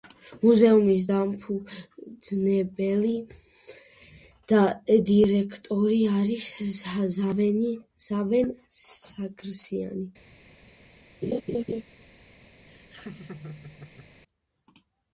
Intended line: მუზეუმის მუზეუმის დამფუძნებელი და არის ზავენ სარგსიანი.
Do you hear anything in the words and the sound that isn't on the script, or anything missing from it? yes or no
yes